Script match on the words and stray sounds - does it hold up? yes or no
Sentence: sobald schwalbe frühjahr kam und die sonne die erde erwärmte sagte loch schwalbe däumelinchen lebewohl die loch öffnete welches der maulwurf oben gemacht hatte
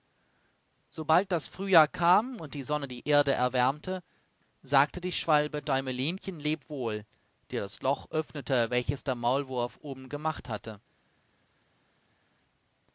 no